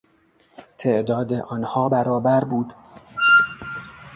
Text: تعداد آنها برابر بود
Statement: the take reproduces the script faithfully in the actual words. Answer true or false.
true